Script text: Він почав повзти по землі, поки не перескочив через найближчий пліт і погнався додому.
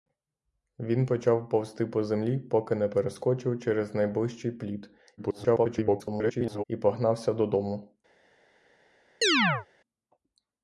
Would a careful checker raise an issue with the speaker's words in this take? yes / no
yes